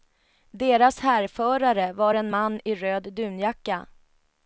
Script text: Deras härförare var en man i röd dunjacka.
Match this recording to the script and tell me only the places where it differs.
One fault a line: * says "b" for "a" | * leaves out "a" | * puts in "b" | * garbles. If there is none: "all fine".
all fine